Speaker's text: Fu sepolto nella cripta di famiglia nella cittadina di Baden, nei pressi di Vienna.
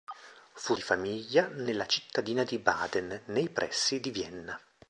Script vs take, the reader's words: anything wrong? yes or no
yes